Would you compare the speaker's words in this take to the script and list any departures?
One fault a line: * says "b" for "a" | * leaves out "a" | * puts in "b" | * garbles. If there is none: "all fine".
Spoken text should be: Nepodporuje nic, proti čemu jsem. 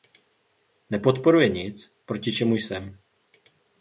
all fine